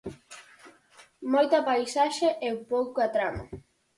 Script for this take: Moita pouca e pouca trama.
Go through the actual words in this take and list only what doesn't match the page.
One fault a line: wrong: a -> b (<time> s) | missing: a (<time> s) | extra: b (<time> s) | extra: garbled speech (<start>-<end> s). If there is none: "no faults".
wrong: pouca -> paisaxe (1.7 s)